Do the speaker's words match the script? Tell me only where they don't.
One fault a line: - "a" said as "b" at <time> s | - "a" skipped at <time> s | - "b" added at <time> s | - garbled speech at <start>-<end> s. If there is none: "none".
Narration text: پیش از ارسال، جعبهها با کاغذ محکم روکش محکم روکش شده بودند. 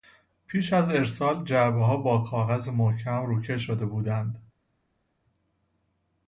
- "محکم روکش" skipped at 3.6 s